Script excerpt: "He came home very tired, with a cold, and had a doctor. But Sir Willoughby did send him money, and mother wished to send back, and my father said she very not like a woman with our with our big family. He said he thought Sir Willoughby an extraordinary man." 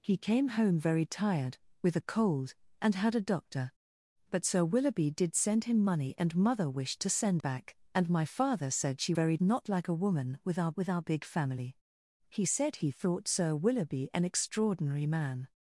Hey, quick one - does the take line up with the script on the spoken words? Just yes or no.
yes